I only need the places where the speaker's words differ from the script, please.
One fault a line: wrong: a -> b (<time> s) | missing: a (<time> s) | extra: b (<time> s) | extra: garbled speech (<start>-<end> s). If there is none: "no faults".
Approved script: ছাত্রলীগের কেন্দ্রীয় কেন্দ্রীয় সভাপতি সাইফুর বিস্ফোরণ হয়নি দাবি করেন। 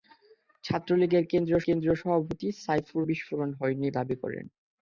no faults